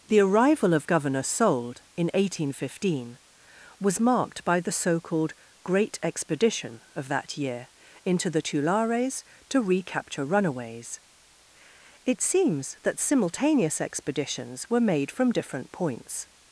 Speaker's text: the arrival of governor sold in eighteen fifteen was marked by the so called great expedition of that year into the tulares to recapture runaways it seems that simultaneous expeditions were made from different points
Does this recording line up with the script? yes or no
yes